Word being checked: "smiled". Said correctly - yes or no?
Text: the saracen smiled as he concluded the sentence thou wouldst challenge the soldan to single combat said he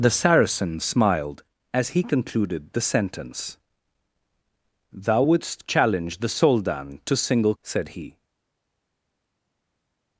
yes